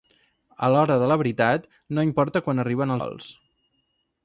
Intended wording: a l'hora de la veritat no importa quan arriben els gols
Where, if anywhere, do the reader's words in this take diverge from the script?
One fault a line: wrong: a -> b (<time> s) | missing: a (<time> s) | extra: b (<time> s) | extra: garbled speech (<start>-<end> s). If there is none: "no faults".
missing: els (3.0 s)